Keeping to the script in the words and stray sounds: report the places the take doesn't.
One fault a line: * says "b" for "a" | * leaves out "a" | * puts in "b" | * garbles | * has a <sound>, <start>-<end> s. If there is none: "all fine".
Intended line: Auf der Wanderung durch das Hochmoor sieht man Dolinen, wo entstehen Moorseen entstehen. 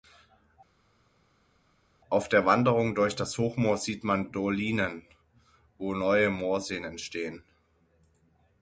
* says "neue" for "entstehen"